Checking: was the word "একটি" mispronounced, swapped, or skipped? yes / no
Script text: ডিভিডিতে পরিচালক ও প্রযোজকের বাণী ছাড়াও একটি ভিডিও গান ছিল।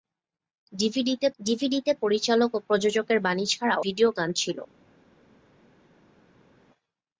yes